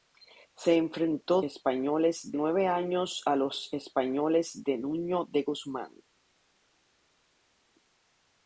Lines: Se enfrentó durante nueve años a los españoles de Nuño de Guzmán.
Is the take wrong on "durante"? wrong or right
wrong